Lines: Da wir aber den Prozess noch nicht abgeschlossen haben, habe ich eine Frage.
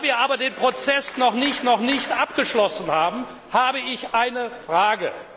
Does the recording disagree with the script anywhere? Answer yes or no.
yes